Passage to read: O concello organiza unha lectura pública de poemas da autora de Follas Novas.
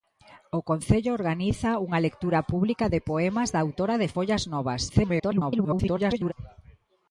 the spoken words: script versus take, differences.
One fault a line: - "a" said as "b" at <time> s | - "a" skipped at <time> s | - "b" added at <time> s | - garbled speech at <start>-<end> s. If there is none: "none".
- garbled speech at 4.9-6.3 s